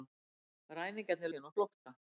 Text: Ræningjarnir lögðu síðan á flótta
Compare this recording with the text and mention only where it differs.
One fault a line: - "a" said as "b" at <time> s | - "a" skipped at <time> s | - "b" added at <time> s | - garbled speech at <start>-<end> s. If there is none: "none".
- "lögðu" skipped at 1.3 s